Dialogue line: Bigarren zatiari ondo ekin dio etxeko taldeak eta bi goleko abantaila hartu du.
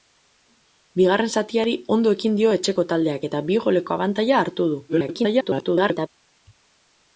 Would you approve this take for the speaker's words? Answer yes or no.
no